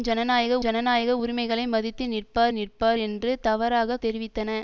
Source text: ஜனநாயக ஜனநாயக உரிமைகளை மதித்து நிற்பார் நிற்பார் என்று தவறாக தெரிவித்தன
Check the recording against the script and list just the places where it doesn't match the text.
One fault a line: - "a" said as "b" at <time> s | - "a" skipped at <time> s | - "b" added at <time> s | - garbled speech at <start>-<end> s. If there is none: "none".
none